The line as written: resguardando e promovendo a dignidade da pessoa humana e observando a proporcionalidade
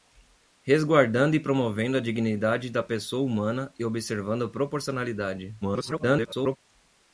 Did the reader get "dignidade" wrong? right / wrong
right